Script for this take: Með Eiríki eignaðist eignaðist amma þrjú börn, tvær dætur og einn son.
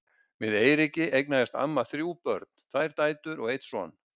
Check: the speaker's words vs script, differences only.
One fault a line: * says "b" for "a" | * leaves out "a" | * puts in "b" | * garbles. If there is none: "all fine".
* leaves out "eignaðist"